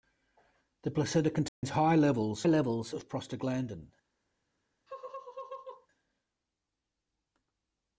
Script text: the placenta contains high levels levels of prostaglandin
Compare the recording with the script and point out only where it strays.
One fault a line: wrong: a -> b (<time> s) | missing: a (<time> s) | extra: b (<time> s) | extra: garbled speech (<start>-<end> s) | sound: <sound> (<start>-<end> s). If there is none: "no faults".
sound: dropout (1.5-1.6 s)
sound: laugh (4.9-5.9 s)